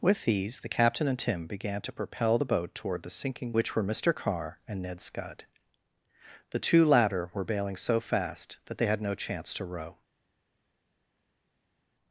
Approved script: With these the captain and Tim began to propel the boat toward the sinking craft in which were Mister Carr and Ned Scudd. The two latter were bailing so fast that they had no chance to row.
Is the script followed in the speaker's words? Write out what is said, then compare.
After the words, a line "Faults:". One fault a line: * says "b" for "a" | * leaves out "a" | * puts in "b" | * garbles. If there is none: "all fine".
With these the captain and Tim began to propel the boat toward the sinking which were Mister Carr and Ned Scudd. The two latter were bailing so fast that they had no chance to row.
Faults:
* leaves out "craft in"